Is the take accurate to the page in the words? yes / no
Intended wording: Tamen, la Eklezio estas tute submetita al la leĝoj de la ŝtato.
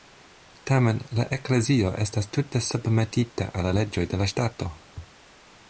yes